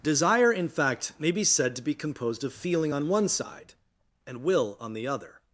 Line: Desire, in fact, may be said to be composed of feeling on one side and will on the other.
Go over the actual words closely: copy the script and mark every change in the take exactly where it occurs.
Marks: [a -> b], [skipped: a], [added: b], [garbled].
Desire, in fact, may be said to be composed of feeling on one side and will on the other.